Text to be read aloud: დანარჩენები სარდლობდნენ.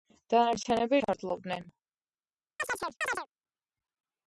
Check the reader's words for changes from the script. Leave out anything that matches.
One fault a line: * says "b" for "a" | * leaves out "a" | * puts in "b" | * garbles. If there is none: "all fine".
all fine